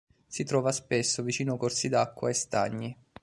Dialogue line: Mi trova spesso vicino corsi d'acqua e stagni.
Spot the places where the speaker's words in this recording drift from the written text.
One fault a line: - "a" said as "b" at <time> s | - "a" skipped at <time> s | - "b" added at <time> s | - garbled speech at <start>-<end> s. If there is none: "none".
- "Mi" said as "Si" at 0.2 s